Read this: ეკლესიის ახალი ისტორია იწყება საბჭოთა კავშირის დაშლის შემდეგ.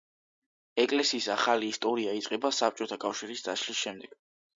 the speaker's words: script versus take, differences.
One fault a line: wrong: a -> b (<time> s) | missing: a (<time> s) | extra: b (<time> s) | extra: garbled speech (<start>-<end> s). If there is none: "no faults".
no faults